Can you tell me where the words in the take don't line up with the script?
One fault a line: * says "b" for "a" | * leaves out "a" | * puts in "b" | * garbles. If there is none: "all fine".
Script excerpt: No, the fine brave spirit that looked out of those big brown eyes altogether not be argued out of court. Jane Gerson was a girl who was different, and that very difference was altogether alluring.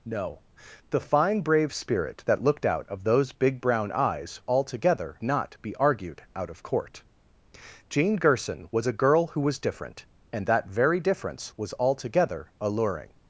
all fine